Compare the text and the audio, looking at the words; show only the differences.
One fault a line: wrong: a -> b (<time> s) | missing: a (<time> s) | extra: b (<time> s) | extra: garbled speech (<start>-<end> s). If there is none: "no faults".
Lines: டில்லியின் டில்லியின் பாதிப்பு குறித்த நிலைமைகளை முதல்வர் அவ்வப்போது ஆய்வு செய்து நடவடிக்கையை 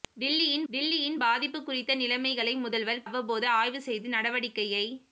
no faults